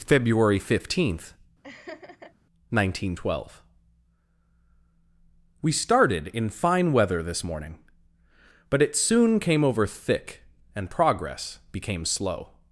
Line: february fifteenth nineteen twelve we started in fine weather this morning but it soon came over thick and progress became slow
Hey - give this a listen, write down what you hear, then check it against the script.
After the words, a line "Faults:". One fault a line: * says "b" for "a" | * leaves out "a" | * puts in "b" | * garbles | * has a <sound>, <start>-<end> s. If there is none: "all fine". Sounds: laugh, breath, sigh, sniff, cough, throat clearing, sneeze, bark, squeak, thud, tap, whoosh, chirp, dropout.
february fifteenth nineteen twelve we started in fine weather this morning but it soon came over thick and progress became slow
Faults:
* has a laugh, 1.6-2.3 s